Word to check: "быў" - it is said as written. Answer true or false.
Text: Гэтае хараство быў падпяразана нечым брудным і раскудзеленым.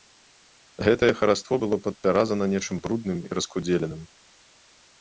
false